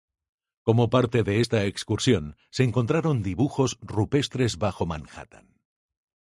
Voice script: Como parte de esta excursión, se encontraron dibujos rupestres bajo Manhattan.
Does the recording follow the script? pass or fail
pass